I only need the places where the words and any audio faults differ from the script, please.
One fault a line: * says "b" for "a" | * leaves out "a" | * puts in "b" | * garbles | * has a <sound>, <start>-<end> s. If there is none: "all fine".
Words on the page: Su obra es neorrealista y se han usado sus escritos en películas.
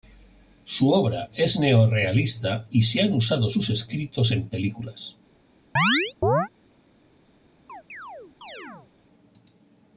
* has a chirp, 5.8-6.5 s
* has a chirp, 7.7-8.9 s